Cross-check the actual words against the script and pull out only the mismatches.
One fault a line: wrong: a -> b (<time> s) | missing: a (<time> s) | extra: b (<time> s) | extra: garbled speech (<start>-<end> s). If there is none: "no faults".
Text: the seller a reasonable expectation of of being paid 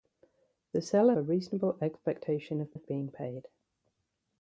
no faults